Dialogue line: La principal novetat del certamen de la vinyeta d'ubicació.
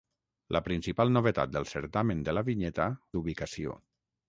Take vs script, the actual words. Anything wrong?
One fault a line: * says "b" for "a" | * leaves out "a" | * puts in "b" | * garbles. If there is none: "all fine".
all fine